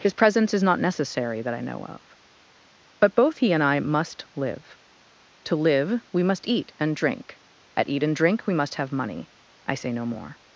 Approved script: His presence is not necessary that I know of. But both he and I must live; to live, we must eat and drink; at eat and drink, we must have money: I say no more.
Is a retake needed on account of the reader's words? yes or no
no